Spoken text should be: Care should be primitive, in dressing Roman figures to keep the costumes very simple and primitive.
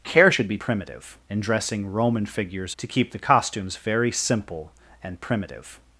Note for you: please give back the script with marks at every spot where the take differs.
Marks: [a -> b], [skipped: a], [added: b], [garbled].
Care should be primitive, in dressing Roman figures to keep the costumes very simple and primitive.